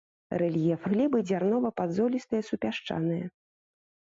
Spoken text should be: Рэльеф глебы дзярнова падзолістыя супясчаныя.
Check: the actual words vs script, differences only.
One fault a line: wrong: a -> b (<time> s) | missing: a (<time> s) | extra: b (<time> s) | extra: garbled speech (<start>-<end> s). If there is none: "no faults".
no faults